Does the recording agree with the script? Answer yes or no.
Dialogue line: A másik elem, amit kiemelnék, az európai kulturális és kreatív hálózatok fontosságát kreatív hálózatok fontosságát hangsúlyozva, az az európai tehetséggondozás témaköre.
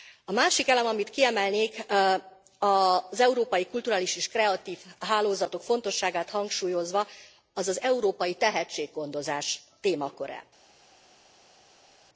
no